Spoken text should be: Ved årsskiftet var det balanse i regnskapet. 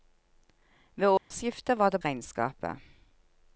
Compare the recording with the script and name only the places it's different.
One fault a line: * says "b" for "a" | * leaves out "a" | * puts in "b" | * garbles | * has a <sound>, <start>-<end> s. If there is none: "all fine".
* has a dropout, 1.2-1.3 s
* leaves out "balanse i"